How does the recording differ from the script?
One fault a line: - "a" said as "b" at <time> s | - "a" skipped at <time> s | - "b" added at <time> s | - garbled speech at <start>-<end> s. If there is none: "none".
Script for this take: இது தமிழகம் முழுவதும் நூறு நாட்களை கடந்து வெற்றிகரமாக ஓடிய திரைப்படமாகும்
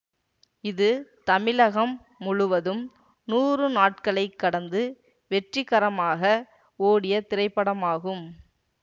none